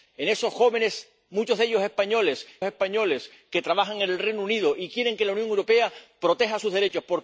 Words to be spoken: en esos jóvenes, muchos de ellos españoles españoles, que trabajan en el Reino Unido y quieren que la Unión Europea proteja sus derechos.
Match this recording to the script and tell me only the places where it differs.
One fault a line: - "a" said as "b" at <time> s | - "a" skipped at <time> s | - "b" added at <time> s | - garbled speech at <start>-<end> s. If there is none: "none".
none